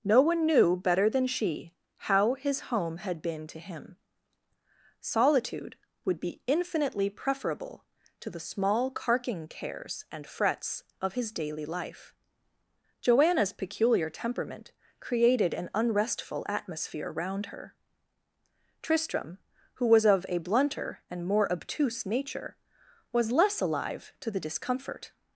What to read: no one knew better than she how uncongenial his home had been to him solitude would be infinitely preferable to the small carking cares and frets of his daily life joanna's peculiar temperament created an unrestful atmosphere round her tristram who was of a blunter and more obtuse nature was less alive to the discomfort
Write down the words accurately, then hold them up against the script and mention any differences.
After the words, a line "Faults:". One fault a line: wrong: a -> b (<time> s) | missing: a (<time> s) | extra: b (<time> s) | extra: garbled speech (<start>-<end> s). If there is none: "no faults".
no one knew better than she how his home had been to him solitude would be infinitely preferable to the small carking cares and frets of his daily life joanna's peculiar temperament created an unrestful atmosphere round her tristram who was of a blunter and more obtuse nature was less alive to the discomfort
Faults:
missing: uncongenial (2.3 s)